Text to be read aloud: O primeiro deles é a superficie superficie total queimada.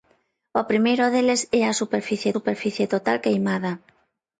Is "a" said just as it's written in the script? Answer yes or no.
yes